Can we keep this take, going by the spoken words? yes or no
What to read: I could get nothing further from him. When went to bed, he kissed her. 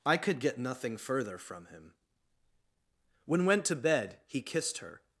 yes